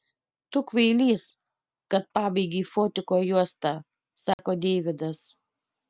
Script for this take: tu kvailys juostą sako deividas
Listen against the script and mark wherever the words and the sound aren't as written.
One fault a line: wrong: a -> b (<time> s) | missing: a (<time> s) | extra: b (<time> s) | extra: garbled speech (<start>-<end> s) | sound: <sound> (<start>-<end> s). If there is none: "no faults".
extra: kad pabaigei fotiko (1.9 s)
sound: dropout (4.3-4.4 s)